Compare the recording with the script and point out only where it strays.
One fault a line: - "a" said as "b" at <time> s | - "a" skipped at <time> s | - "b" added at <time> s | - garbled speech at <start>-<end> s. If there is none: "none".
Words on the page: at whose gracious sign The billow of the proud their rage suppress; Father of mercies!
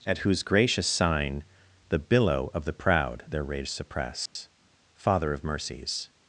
none